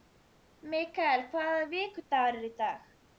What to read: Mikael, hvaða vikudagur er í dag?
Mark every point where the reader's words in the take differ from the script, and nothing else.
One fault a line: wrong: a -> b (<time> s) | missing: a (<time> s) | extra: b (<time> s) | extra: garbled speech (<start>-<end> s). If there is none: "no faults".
no faults